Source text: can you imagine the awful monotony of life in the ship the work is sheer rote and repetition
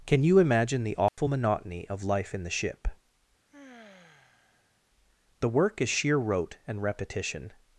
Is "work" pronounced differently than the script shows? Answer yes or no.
no